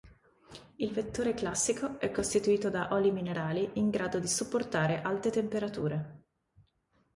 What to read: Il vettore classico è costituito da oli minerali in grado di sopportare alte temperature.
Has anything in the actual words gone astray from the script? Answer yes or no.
no